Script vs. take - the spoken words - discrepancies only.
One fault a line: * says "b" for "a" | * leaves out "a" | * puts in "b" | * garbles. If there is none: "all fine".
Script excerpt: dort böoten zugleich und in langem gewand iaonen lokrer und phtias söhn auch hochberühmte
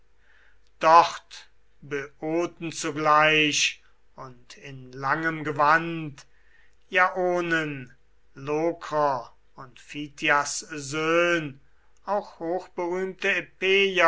all fine